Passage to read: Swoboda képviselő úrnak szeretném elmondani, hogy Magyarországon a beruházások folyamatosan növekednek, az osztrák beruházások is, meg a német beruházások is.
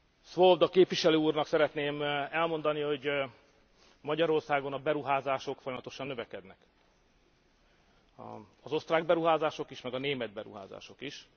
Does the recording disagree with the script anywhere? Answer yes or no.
no